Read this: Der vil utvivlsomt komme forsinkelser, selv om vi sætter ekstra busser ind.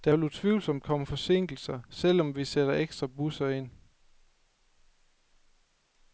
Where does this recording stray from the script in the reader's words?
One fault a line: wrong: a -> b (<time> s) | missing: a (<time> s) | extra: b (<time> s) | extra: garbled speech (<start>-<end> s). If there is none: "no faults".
no faults